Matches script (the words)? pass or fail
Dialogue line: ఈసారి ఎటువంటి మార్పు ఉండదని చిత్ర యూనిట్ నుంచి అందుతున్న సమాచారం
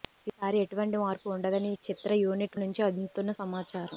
pass